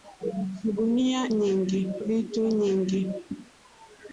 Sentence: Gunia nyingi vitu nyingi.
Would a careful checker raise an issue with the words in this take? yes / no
no